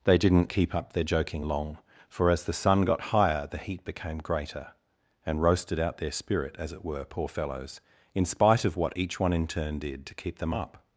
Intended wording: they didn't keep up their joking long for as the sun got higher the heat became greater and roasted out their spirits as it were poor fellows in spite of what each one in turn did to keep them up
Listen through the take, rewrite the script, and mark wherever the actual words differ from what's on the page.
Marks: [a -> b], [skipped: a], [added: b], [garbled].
they didn't keep up their joking long for as the sun got higher the heat became greater and roasted out their [spirits -> spirit] as it were poor fellows in spite of what each one in turn did to keep them up